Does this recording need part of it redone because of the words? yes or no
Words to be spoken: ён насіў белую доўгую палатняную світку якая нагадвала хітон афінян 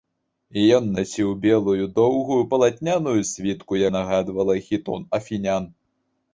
yes